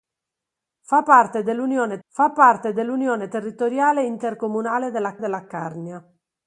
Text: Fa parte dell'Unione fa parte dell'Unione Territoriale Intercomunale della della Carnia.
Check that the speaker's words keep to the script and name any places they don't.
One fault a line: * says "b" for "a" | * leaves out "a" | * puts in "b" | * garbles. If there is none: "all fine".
all fine